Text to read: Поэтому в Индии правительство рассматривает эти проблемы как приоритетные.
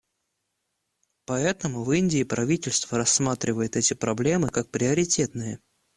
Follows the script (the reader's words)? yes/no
yes